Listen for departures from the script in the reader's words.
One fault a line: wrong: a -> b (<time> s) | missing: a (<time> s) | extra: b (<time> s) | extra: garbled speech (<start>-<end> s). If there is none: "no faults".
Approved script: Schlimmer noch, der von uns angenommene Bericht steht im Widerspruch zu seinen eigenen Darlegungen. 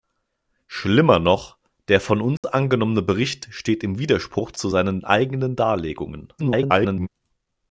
extra: garbled speech (6.4-7.1 s)